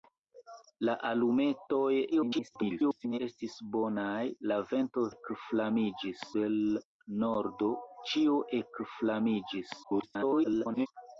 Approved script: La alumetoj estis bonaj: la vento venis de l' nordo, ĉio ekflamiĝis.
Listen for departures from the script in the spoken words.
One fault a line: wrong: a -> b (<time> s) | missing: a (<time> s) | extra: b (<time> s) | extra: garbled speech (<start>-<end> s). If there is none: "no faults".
extra: garbled speech (2.1-3.2 s)
wrong: venis -> ekflamiĝis (5.1 s)
extra: garbled speech (9.8-10.9 s)